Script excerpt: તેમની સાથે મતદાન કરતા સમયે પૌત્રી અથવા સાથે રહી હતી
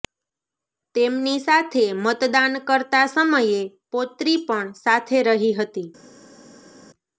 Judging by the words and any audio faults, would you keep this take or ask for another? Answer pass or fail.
fail